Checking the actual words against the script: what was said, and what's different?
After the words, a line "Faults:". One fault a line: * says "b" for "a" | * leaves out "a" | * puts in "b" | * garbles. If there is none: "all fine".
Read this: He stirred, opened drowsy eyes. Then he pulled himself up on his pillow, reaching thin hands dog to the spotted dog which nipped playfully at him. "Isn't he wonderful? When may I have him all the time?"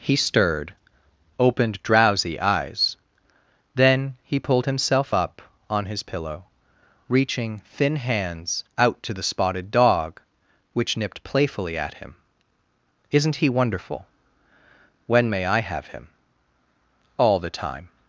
He stirred, opened drowsy eyes. Then he pulled himself up on his pillow, reaching thin hands out to the spotted dog which nipped playfully at him. "Isn't he wonderful? When may I have him all the time?"
Faults:
* says "out" for "dog"